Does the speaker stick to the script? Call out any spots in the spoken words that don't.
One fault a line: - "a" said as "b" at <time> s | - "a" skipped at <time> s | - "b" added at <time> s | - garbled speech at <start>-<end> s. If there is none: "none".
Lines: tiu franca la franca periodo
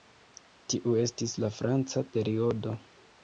- "franca" said as "estis" at 1.0 s